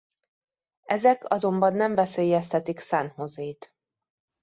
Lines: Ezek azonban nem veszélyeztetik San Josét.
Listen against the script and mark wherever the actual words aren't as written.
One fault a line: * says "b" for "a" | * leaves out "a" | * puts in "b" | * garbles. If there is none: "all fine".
all fine